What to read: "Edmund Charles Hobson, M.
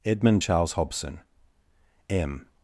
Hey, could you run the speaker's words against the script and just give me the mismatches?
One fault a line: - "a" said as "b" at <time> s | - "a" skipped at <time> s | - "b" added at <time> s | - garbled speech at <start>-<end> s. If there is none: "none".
none